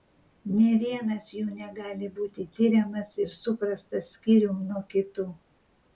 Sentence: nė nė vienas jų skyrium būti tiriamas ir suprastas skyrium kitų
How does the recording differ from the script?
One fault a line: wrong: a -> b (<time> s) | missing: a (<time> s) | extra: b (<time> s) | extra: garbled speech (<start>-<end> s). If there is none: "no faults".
missing: nė (0.7 s)
wrong: skyrium -> negali (1.6 s)
extra: nuo (4.7 s)